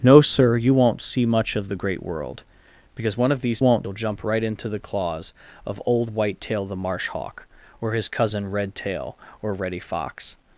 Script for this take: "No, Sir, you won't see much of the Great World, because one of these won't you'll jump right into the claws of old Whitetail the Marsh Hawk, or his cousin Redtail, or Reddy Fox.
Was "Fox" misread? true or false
false